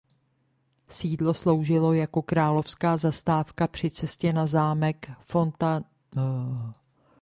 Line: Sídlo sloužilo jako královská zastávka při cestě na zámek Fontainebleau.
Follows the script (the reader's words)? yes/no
yes